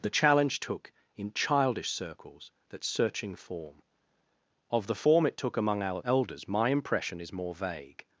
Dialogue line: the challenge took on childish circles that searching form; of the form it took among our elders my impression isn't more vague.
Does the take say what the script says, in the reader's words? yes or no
no